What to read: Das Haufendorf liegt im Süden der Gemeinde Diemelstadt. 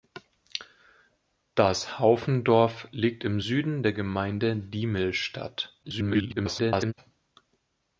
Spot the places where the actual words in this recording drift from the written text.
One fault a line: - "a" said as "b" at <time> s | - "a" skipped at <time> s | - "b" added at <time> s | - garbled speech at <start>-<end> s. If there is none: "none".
- garbled speech at 5.8-6.9 s